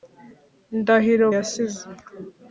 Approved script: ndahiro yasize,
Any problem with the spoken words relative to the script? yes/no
no